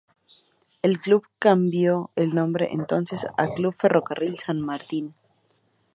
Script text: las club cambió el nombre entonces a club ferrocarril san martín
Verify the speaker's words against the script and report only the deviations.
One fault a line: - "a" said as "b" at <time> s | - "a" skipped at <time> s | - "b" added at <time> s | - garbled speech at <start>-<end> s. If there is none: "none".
- "las" said as "el" at 0.8 s